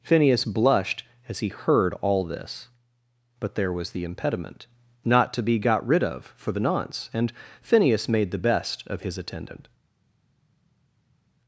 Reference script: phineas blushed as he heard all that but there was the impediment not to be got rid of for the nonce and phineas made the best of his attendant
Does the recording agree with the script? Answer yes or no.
no